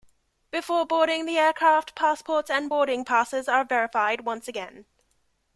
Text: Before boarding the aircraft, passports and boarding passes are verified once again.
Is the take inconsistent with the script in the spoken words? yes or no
no